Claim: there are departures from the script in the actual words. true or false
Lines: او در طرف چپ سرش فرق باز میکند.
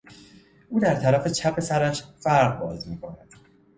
false